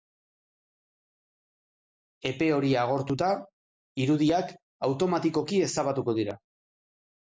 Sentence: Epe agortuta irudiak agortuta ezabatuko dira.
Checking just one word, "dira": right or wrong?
right